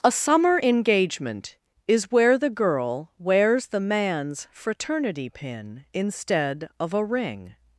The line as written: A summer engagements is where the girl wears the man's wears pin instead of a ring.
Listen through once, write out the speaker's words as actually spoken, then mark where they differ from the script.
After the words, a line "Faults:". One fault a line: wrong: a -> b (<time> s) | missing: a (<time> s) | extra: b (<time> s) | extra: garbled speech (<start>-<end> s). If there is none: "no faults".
A summer engagement is where the girl wears the man's fraternity pin instead of a ring.
Faults:
wrong: engagements -> engagement (0.6 s)
wrong: wears -> fraternity (4.5 s)